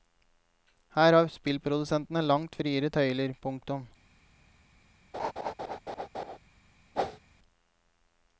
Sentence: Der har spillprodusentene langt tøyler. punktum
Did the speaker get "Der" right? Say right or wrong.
wrong